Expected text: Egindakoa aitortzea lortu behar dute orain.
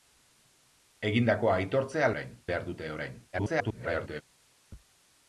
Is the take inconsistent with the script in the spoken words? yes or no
yes